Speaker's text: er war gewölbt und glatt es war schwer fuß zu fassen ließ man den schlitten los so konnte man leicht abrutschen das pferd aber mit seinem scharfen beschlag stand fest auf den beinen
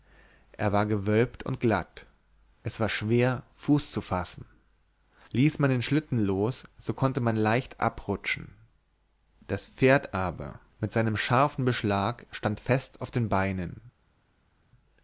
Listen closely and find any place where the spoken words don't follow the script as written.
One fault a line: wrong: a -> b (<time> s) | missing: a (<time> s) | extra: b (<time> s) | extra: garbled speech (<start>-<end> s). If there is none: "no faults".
no faults